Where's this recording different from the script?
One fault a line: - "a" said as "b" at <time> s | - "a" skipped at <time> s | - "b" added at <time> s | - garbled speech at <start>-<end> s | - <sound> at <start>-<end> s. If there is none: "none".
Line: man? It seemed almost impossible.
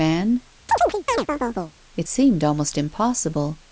- chirp at 0.7-1.7 s